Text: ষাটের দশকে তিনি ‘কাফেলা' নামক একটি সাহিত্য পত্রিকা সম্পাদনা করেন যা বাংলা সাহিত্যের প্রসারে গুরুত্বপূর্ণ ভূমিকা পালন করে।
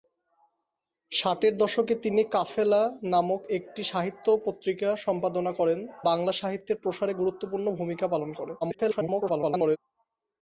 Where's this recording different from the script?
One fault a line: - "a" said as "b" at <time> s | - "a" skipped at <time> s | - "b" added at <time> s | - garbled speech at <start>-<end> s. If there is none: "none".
- "যা" skipped at 5.8 s
- garbled speech at 8.6-9.8 s